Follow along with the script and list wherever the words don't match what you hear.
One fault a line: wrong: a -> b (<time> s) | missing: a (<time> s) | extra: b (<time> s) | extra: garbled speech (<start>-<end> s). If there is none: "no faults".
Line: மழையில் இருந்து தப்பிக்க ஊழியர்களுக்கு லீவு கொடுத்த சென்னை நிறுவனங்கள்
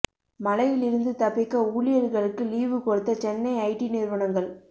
extra: ஐடி (3.7 s)